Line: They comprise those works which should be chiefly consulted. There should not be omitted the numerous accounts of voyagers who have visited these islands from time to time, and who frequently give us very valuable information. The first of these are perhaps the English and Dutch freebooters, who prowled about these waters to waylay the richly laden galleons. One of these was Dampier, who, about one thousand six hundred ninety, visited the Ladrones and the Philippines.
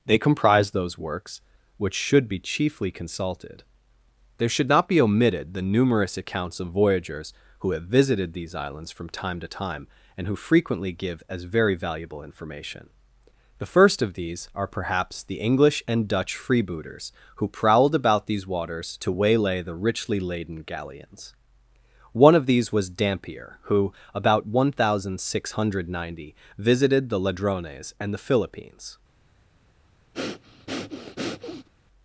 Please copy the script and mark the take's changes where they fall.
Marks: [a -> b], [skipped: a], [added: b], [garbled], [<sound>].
They comprise those works which should be chiefly consulted. There should not be omitted the numerous accounts of voyagers who have visited these islands from time to time, and who frequently give [us -> as] very valuable information. The first of these are perhaps the English and Dutch freebooters, who prowled about these waters to waylay the richly laden galleons. One of these was Dampier, who, about one thousand six hundred ninety, visited the Ladrones and the Philippines. [breath]